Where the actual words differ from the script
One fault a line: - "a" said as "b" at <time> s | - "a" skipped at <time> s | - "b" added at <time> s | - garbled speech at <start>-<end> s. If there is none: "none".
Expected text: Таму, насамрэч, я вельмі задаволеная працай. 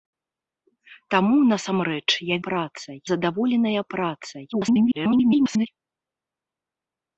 - "вельмі" said as "працай" at 2.5 s
- garbled speech at 4.5-5.7 s